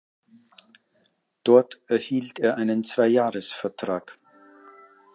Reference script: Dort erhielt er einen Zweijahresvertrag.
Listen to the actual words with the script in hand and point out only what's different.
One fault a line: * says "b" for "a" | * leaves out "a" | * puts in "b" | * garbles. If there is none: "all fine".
all fine